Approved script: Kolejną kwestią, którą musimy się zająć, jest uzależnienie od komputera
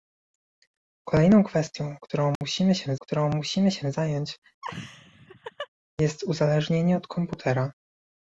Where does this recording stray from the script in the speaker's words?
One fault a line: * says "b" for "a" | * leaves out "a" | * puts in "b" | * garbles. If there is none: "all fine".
* puts in "którą musimy się"